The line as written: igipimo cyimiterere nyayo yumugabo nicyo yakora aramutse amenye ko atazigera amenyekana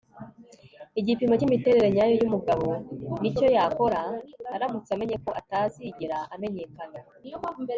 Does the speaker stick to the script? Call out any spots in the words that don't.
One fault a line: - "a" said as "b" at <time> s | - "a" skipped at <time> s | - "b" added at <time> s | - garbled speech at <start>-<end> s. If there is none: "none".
none